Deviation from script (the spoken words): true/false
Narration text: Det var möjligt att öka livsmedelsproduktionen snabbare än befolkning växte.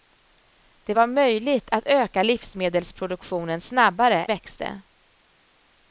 true